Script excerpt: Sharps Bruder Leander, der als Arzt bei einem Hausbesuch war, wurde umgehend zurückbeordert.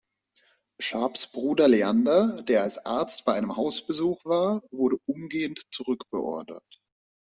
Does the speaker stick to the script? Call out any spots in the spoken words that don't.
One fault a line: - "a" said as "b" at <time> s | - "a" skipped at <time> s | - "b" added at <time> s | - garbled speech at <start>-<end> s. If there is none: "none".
none